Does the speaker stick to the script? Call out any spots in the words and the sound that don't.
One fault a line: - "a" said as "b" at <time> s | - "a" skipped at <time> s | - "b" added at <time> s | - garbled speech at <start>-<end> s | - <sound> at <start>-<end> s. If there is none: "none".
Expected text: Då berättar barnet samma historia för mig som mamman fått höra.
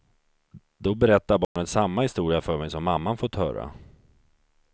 - dropout at 1.4-1.6 s